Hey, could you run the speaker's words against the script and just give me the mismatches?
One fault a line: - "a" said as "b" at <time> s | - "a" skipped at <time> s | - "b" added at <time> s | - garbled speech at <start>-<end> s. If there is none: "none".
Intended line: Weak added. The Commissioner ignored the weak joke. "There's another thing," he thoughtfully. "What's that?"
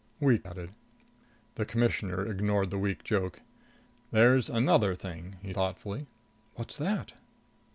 none